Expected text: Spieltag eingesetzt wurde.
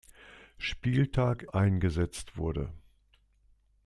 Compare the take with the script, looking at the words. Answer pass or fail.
pass